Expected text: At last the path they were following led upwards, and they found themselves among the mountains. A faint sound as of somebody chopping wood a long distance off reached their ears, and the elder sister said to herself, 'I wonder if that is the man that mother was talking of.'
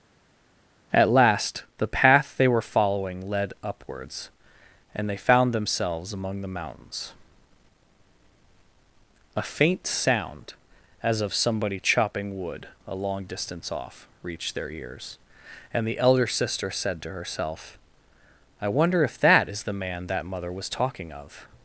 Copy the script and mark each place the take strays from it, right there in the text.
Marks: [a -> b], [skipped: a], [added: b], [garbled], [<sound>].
At last the path they were following led upwards, and they found themselves among the mountains. A faint sound as of somebody chopping wood a long distance off reached their ears, and the elder sister said to herself, 'I wonder if that is the man that mother was talking of.'